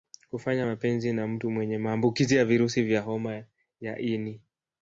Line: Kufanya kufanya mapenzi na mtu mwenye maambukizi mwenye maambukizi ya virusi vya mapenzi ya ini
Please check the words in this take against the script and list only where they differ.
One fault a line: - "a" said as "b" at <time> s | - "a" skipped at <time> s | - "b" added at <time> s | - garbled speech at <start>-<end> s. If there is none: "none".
- "kufanya" skipped at 0.7 s
- "mwenye maambukizi" skipped at 2.3 s
- "mapenzi" said as "homa" at 3.0 s